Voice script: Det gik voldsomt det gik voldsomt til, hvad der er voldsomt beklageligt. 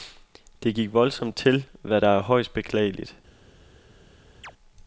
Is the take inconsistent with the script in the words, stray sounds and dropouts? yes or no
yes